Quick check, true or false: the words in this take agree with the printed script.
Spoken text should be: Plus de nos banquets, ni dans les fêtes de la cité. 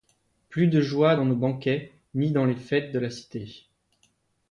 false